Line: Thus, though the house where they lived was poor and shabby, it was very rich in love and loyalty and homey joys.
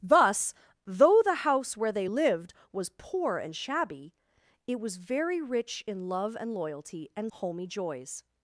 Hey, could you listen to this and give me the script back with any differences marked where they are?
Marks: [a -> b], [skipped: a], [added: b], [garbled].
Thus, though the house where they lived was poor and shabby, it was very rich in love and loyalty and homey joys.